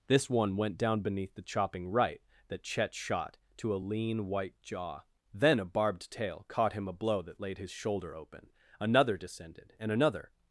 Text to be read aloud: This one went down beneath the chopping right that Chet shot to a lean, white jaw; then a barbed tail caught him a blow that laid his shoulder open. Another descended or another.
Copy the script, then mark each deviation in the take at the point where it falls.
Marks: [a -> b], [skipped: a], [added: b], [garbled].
This one went down beneath the chopping right that Chet shot to a lean, white jaw; then a barbed tail caught him a blow that laid his shoulder open. Another descended [or -> and] another.